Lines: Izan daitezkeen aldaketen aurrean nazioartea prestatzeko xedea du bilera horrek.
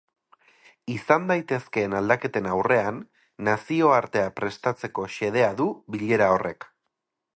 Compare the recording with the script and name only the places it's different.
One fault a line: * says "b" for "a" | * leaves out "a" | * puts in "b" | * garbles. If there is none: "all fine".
all fine